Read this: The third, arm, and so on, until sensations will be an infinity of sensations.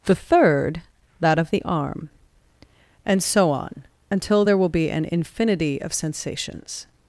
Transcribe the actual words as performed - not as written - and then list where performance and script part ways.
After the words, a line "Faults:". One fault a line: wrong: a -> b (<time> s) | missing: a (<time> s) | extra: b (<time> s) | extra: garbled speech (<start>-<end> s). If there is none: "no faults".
The third, that of the arm, and so on, until there will be an infinity of sensations.
Faults:
extra: that of the (1.2 s)
wrong: sensations -> there (4.4 s)